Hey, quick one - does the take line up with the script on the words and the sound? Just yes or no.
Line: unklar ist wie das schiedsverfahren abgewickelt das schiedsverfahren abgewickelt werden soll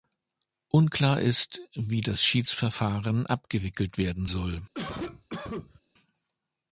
no